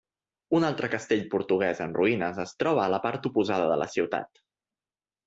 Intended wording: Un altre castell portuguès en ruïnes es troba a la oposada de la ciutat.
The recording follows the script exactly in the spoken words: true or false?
false